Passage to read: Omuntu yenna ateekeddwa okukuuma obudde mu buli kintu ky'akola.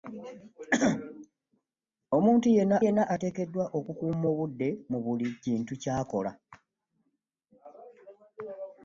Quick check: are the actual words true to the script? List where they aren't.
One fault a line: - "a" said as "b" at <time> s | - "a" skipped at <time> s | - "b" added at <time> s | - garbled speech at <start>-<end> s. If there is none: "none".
- "yenna" added at 2.8 s